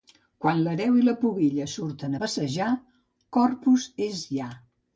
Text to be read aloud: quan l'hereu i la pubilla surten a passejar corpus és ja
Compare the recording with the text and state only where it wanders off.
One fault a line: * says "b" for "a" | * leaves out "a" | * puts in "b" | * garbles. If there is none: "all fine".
all fine